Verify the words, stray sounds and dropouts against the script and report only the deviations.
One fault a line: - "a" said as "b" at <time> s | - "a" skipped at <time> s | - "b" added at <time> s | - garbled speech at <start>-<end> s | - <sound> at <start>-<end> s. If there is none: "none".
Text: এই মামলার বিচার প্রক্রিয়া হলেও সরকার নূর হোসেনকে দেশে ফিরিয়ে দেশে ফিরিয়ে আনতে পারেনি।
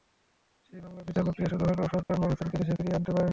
- "এই" said as "সেই" at 0.7 s
- "শুরু" added at 1.5 s
- dropout at 2.0-2.1 s
- "দেশে ফিরিয়ে" skipped at 3.0 s